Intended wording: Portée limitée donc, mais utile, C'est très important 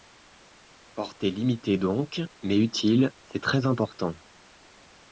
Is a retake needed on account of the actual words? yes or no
no